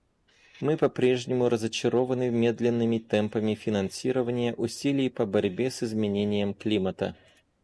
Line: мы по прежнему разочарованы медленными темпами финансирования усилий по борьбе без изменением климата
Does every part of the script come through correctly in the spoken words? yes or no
no